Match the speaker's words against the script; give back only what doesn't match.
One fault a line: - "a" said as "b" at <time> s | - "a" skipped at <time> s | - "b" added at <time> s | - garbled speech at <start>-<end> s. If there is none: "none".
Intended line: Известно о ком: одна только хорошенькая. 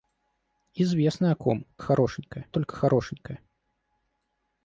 - "одна" said as "хорошенькая" at 1.8 s